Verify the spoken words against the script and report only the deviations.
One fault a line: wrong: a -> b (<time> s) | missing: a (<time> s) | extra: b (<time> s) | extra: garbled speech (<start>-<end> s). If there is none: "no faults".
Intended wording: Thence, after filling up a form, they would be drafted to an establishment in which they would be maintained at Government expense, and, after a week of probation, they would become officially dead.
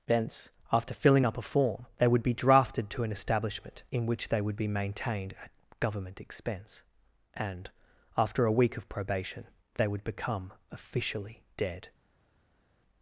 no faults